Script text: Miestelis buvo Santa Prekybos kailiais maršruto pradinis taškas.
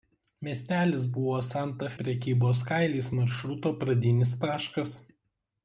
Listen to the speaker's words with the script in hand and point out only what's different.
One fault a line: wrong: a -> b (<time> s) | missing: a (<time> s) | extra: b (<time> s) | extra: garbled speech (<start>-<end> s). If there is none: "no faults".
no faults